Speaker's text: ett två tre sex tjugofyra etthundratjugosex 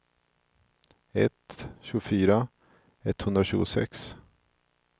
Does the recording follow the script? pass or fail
fail